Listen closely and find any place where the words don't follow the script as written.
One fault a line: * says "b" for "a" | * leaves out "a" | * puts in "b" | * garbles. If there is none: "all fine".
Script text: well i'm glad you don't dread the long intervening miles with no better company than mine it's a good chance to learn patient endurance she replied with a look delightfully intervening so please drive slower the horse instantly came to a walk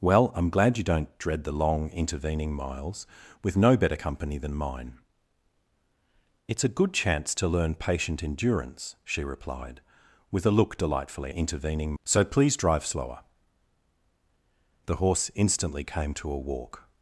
all fine